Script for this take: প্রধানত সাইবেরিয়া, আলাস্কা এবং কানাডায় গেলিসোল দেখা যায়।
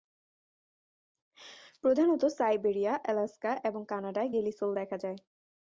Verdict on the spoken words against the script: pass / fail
pass